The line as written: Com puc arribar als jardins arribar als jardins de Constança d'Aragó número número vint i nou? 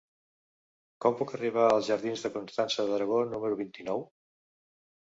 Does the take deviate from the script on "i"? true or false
false